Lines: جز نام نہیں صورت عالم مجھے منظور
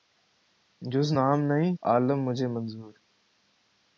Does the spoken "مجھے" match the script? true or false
true